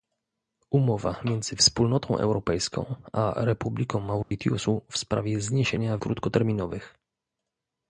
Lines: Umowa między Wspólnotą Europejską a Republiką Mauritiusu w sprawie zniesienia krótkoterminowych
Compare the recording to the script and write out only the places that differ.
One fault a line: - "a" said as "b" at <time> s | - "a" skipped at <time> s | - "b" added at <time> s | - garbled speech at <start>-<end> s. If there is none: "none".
none